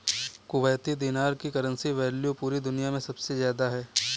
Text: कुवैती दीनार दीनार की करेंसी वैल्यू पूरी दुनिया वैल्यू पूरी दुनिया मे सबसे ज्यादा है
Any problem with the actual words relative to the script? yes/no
yes